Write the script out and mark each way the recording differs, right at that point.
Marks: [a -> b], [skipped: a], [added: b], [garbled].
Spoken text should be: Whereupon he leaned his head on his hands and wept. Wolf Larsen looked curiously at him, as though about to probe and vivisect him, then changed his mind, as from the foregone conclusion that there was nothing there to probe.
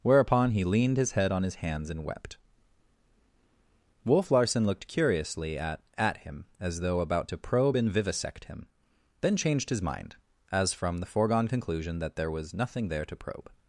Whereupon he leaned his head on his hands and wept. Wolf Larsen looked curiously at [added: at] him, as though about to probe and vivisect him, then changed his mind, as from the foregone conclusion that there was nothing there to probe.